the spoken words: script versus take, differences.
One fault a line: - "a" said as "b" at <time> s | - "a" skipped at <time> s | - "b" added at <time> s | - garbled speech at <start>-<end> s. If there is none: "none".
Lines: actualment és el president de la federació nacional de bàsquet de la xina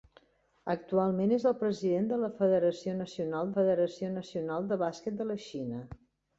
- "federació nacional" added at 3.5 s